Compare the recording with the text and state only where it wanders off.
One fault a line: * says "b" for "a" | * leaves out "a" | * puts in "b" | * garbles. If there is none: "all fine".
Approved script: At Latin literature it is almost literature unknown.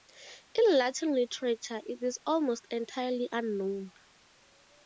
* says "In" for "At"
* says "entirely" for "literature"